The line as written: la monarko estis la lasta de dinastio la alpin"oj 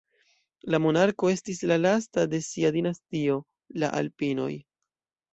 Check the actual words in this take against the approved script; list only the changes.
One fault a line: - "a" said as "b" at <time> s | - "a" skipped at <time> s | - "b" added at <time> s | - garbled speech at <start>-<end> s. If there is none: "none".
- "sia" added at 2.5 s